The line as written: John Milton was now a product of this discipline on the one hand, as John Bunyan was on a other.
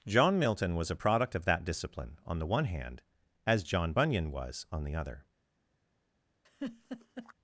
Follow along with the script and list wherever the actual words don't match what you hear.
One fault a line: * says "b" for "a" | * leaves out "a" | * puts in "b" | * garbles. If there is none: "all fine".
* leaves out "now"
* says "that" for "this"
* says "the" for "a"